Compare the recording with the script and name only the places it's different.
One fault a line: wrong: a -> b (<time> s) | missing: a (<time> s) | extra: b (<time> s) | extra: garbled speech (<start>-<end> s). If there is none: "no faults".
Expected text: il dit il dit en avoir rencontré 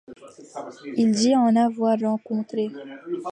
missing: il dit (1.4 s)